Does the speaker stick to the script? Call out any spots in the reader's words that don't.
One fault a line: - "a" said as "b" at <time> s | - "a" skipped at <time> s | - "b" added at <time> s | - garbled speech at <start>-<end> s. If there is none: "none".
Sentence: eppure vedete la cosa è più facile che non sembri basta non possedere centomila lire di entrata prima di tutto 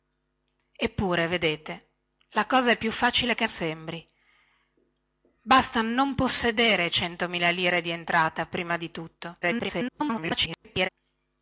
- "non" skipped at 3.5 s
- garbled speech at 9.4-10.9 s